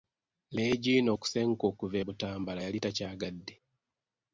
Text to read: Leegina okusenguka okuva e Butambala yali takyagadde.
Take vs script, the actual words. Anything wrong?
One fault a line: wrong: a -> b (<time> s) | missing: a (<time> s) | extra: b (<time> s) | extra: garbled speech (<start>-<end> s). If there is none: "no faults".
no faults